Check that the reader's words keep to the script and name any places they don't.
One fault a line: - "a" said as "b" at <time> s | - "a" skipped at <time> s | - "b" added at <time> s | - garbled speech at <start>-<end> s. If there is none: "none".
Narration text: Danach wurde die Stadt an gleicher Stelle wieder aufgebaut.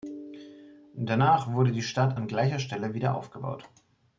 none